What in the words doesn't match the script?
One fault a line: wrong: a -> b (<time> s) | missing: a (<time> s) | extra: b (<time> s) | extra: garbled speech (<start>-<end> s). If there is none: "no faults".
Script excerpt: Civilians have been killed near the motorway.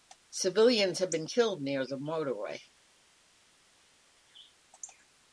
no faults